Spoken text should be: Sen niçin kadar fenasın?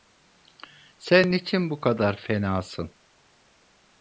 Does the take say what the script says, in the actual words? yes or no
no